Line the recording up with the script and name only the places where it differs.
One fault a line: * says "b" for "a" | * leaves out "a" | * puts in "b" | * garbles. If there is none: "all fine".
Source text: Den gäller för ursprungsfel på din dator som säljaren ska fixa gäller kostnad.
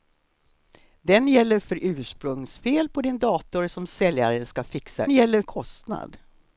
all fine